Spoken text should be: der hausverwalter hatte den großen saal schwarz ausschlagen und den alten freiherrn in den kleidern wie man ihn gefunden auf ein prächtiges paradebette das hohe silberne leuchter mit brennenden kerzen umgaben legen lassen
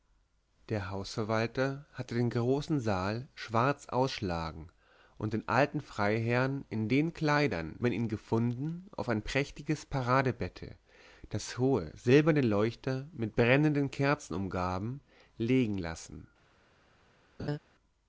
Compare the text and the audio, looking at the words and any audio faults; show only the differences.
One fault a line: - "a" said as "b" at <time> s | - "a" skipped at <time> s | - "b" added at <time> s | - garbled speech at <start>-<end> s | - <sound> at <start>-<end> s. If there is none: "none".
- "wie" skipped at 7.8 s
- laugh at 17.4-17.6 s